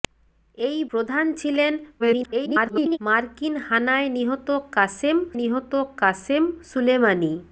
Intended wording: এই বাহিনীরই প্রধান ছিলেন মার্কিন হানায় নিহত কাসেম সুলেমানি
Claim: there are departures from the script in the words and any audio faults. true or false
true